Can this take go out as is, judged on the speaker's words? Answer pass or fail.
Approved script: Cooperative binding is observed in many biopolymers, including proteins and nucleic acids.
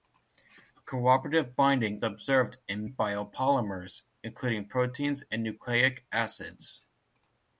fail